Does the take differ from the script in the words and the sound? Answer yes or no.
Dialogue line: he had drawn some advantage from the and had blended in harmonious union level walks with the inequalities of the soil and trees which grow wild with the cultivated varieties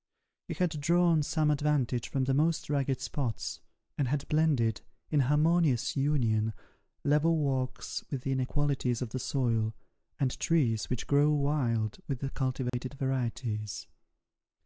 yes